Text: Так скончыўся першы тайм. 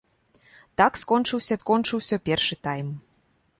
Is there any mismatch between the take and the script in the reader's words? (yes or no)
yes